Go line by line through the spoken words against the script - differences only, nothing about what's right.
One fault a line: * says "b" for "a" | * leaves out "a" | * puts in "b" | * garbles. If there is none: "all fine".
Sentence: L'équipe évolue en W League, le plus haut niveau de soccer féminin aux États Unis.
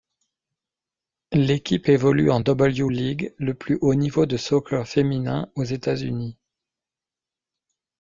all fine